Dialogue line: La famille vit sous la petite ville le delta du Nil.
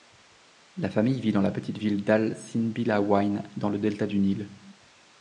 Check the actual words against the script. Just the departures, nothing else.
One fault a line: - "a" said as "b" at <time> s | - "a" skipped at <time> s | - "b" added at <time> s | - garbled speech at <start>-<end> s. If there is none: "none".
- "sous" said as "dans" at 1.3 s
- "d'al Sinbillawayn dans" added at 2.0 s